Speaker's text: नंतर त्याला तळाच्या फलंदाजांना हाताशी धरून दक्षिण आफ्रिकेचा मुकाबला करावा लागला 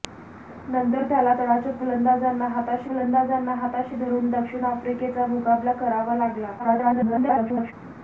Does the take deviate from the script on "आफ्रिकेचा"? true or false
false